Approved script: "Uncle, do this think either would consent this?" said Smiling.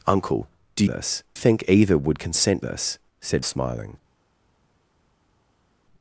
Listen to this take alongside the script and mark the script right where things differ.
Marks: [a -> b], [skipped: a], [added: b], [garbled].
"Uncle, do this think either would consent this?" said Smiling.